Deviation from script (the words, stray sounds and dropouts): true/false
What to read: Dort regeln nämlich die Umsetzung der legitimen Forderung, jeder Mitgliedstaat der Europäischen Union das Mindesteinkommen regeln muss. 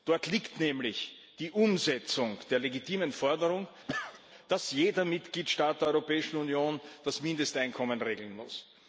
true